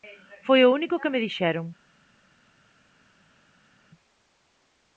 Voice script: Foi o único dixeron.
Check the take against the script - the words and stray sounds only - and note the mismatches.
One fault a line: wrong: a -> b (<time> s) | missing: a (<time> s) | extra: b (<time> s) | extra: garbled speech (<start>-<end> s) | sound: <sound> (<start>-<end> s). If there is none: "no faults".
extra: que me (1.0 s)